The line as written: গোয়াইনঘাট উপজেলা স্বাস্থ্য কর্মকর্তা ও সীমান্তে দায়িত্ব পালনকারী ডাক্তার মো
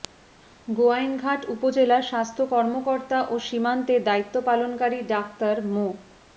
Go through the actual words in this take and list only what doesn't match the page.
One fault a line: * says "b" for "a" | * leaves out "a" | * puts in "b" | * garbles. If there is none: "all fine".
all fine